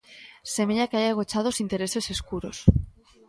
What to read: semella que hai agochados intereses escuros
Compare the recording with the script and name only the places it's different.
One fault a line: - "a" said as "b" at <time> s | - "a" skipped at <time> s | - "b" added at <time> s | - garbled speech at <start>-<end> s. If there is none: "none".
none